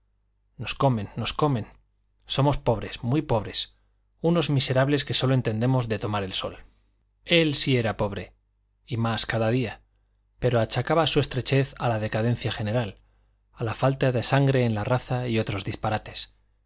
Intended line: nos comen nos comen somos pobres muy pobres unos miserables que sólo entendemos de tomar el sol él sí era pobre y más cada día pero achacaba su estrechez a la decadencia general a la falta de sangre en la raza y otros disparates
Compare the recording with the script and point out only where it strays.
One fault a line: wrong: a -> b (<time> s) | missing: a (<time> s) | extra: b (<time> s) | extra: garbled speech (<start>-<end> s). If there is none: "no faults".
no faults